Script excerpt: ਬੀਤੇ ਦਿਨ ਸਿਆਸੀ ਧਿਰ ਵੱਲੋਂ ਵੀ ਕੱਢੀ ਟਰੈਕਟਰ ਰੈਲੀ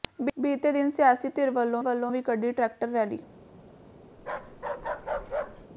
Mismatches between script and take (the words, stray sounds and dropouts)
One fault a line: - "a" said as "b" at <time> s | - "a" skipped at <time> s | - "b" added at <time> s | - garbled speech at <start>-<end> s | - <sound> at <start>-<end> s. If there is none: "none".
- "ਵੱਲੋਂ" added at 1.8 s
- bark at 4.2-5.7 s